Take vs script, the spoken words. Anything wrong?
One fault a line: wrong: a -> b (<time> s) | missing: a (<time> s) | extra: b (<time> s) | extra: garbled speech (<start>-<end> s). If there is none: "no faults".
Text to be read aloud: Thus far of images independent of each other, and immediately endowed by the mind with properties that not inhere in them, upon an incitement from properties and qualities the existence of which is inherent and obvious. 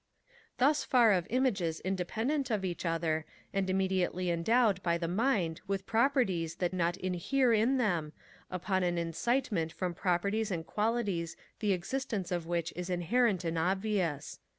no faults